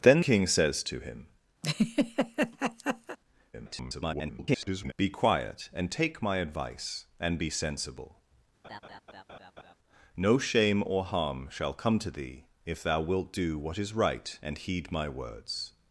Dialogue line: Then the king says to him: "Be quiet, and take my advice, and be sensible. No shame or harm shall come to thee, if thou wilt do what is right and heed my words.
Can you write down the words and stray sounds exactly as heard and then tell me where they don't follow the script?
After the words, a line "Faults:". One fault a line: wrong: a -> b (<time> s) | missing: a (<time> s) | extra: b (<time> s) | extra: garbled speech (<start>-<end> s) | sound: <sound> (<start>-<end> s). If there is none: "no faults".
Then king says to him: [garbled] "Be quiet, and take my advice, and be sensible. No shame or harm shall come to thee, if thou wilt do what is right and heed my words.
Faults:
missing: the (0.2 s)
sound: laugh (1.6-3.2 s)
extra: garbled speech (3.5-4.9 s)
sound: laugh (8.6-9.8 s)